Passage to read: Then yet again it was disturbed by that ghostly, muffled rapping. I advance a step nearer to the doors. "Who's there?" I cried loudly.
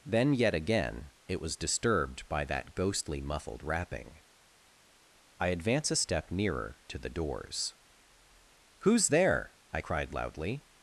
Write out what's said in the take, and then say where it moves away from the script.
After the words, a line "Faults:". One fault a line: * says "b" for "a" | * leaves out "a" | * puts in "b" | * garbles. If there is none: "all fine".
Then yet again it was disturbed by that ghostly, muffled rapping. I advance a step nearer to the doors. "Who's there?" I cried loudly.
Faults:
all fine